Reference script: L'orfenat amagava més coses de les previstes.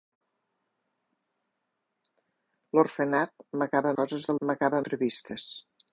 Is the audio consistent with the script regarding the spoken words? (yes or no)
no